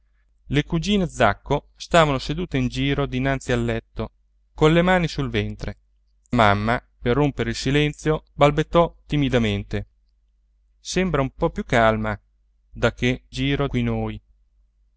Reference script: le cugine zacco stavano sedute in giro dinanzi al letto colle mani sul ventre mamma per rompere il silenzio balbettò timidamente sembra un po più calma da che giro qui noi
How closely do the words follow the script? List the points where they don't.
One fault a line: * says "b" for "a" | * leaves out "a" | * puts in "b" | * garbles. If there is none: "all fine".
all fine